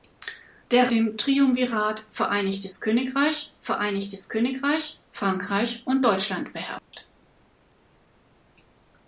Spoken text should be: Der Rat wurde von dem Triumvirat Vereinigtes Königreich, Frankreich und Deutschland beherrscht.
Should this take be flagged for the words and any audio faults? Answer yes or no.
yes